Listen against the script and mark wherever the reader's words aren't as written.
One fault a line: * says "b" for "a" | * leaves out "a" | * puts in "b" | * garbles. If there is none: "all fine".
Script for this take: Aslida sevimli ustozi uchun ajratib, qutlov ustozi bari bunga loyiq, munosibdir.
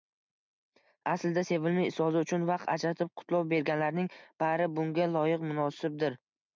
* puts in "vaqt"
* says "berganlarning" for "ustozi"